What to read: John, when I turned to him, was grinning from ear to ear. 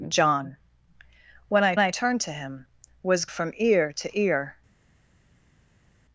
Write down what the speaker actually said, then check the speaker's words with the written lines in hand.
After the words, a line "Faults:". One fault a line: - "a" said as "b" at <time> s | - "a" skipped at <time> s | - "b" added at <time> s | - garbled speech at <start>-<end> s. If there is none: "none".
John, when I I turned to him, was from ear to ear.
Faults:
- "I" added at 1.8 s
- "grinning" skipped at 3.3 s